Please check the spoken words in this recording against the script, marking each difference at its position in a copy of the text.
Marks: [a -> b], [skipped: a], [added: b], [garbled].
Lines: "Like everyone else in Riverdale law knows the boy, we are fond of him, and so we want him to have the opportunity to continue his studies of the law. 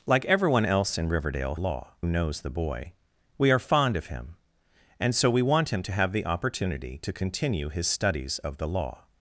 "Like everyone else in Riverdale law knows the boy, we are fond of him, and so we want him to have the opportunity to continue his studies of the law.